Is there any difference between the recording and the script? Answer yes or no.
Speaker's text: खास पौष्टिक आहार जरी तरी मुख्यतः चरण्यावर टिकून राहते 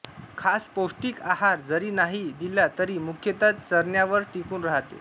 yes